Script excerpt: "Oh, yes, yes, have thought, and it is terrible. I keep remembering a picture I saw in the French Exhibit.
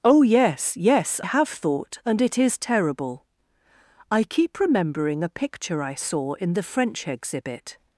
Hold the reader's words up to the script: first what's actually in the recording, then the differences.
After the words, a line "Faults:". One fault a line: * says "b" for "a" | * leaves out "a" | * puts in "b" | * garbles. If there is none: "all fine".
"Oh, yes, yes, have thought, and it is terrible. I keep remembering a picture I saw in the French Exhibit.
Faults:
all fine